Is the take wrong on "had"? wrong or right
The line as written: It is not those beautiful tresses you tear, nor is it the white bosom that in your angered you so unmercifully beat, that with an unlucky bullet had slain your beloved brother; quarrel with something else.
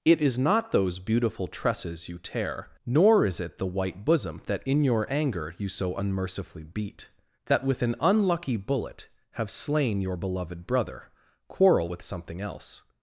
wrong